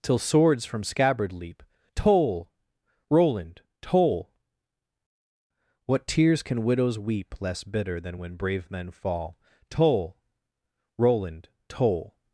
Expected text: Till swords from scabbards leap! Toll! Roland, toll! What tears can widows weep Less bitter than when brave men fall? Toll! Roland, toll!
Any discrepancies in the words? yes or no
yes